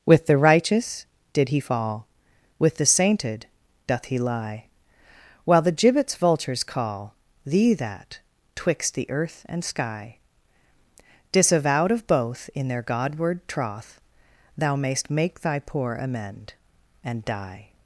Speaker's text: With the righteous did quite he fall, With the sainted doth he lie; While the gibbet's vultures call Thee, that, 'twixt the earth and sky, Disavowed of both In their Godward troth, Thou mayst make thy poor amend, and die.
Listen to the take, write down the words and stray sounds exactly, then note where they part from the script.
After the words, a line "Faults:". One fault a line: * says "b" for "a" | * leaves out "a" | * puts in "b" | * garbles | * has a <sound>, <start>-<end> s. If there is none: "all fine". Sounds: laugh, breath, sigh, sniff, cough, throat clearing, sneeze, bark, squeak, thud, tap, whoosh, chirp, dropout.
With the righteous did he fall, With the sainted doth he lie; While the gibbet's vultures call Thee, that, 'twixt the earth and sky, Disavowed of both In their Godward troth, Thou mayst make thy poor amend, and die.
Faults:
* leaves out "quite"